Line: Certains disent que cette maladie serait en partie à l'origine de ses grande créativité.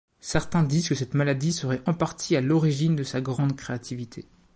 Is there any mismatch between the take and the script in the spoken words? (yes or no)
yes